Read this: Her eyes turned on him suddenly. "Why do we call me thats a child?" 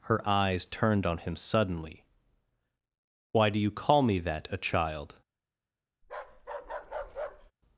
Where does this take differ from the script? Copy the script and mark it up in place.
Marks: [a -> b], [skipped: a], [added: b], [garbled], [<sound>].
Her eyes turned on him suddenly. "Why do [we -> you] call me [thats -> that] a child?" [bark]